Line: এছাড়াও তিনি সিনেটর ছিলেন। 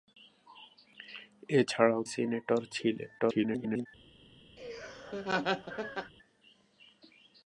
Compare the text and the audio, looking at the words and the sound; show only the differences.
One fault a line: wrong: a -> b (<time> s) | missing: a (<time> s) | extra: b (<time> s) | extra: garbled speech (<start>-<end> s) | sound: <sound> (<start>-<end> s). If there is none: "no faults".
missing: তিনি (2.0 s)
extra: garbled speech (3.2-3.9 s)
sound: laugh (4.6-6.1 s)